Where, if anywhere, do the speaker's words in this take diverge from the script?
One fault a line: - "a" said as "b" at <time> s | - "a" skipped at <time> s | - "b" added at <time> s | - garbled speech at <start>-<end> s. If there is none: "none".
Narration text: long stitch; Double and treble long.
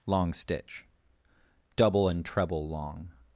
none